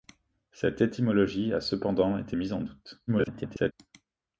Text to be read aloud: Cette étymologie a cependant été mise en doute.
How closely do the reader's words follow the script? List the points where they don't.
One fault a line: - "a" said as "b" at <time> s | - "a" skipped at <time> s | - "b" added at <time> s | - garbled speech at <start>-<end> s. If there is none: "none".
- garbled speech at 3.1-3.7 s